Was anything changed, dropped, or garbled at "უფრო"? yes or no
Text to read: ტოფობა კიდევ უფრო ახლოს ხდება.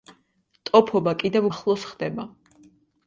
yes